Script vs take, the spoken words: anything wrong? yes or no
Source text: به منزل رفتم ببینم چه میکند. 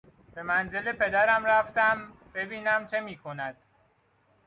yes